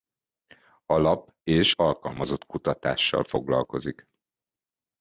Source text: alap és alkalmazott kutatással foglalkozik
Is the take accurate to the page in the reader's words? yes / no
yes